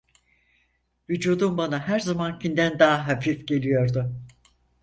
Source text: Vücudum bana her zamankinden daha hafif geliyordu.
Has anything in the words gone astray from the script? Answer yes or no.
no